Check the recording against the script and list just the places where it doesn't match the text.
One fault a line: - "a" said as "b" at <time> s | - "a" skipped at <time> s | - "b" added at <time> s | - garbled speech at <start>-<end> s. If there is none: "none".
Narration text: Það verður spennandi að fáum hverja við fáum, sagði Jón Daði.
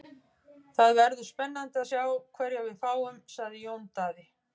- "fáum" said as "sjá" at 1.9 s